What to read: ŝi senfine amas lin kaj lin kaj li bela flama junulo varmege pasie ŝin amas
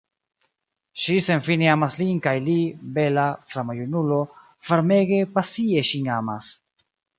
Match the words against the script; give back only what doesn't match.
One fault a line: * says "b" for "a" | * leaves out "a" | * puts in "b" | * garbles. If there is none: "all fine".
* leaves out "lin kaj"